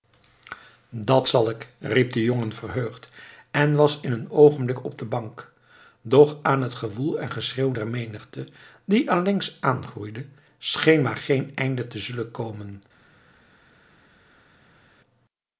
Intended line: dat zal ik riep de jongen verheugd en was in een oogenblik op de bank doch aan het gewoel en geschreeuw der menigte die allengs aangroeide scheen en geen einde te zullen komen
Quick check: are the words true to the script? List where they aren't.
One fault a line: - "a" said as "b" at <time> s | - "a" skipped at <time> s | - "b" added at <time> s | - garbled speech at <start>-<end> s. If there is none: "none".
- "en" said as "maar" at 11.0 s